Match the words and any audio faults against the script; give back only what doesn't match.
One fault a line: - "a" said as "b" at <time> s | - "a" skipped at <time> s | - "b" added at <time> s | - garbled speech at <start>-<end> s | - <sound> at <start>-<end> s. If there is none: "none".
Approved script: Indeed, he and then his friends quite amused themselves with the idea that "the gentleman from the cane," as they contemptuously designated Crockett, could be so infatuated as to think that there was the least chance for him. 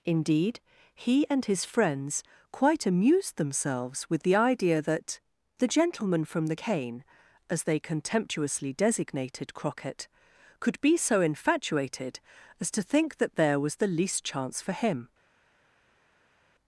- "then" skipped at 1.4 s